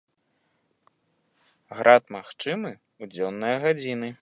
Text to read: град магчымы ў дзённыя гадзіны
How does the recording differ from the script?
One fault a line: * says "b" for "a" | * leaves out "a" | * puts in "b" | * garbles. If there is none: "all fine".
all fine